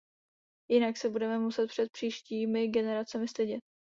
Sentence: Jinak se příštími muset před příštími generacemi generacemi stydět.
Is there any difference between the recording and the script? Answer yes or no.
yes